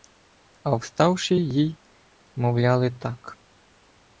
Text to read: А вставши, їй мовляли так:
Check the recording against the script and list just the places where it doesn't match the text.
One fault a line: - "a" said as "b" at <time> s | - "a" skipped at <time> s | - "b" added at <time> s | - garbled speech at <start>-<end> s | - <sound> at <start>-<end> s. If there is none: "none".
none